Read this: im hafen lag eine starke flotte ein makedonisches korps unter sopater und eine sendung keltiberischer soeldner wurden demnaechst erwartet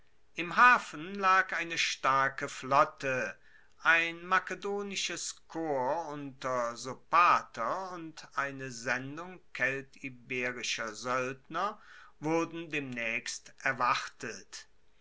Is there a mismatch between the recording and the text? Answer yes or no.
no